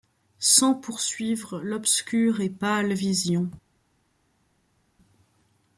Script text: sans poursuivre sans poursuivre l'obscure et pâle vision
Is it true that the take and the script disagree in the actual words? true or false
true